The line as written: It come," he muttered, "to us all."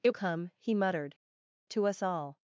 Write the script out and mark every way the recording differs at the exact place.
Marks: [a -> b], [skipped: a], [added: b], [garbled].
It come," he muttered, "to us all."